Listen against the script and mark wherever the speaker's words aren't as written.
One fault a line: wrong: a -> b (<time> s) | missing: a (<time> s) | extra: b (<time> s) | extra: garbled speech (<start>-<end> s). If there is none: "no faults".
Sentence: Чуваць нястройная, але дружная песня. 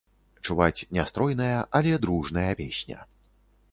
no faults